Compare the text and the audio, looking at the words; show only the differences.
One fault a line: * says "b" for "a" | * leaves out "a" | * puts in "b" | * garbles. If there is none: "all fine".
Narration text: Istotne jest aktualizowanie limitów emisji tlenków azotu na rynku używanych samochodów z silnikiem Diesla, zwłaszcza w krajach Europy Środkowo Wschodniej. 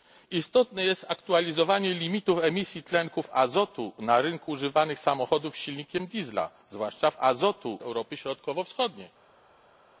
* says "azotu" for "krajach"